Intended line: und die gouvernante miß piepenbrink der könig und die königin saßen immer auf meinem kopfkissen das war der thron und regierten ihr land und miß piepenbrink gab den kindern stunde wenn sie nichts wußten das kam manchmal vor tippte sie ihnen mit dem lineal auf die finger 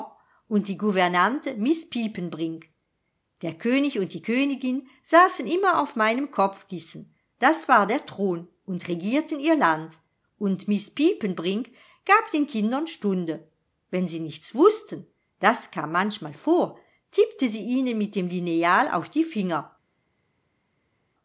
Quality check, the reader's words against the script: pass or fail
pass